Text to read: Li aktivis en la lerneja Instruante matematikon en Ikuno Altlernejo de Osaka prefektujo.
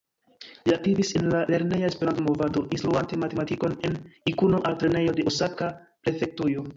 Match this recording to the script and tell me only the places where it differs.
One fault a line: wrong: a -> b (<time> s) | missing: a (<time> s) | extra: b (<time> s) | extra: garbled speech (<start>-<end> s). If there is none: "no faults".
extra: Esperanto movado (1.9 s)